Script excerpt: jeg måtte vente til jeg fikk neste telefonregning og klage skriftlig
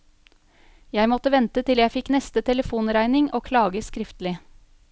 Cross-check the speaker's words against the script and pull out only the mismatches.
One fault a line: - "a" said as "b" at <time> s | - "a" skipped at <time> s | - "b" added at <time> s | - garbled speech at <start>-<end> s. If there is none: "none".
none